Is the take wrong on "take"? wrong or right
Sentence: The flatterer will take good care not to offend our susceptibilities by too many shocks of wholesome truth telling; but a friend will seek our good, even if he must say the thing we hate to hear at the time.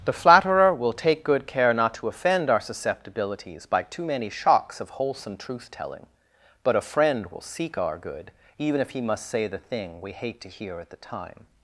right